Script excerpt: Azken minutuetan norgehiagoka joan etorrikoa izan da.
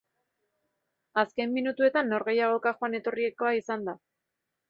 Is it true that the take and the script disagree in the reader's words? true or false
false